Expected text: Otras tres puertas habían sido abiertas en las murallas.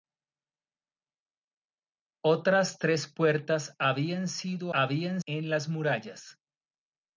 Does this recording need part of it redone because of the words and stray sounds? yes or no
yes